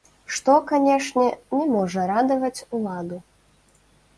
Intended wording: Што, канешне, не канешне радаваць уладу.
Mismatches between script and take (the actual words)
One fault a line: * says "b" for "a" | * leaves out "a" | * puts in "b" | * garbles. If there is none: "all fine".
* says "можа" for "канешне"